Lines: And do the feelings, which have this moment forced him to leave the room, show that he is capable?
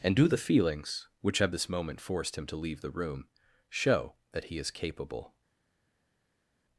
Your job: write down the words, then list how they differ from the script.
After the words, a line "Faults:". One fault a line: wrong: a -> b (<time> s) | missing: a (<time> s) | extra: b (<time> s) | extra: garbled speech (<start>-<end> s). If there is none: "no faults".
And do the feelings, which have this moment forced him to leave the room, show that he is capable?
Faults:
no faults